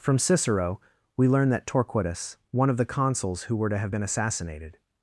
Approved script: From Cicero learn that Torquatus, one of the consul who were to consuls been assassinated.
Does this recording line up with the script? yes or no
no